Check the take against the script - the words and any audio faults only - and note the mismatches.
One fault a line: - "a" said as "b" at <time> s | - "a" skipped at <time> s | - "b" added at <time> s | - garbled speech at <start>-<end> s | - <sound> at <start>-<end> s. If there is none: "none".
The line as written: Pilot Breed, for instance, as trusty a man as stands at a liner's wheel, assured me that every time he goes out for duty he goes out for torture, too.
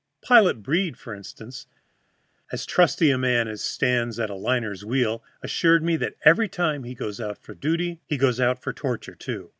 none